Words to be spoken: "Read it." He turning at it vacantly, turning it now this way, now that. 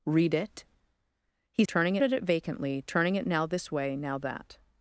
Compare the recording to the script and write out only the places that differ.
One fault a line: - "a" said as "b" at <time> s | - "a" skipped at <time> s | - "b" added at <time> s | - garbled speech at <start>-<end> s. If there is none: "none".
none